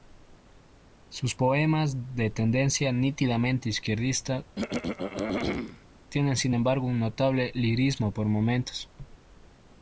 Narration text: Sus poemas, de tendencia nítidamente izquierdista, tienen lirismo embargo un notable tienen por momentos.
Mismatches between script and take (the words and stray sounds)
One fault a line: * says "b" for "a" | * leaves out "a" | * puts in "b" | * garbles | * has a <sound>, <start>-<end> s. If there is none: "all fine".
* has a throat clearing, 4.6-5.9 s
* says "sin" for "lirismo"
* says "lirismo" for "tienen"